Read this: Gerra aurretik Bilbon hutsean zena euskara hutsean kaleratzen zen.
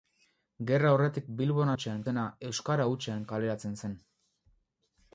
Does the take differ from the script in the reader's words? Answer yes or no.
no